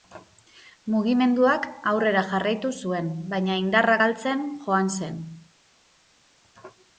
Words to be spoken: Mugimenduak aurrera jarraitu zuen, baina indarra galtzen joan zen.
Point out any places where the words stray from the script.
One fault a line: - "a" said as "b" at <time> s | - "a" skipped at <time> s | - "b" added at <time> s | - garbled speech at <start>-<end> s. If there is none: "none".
none